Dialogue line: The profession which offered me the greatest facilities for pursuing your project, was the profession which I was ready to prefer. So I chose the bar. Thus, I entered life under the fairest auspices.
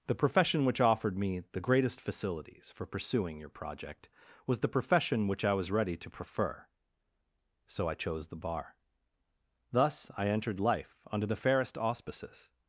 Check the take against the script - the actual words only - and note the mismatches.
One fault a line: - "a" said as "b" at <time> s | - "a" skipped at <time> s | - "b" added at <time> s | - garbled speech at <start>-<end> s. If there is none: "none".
none